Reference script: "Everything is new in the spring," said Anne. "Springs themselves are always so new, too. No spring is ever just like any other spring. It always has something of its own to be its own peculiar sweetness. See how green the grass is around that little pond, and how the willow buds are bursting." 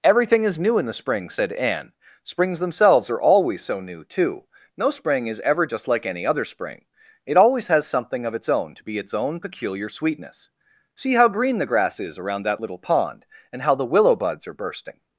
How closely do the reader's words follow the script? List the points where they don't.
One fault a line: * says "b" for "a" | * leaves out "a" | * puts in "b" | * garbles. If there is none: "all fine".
all fine